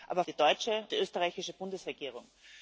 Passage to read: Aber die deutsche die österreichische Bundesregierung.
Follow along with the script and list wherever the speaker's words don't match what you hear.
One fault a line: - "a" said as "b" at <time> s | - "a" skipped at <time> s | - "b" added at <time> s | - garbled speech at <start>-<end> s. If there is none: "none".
none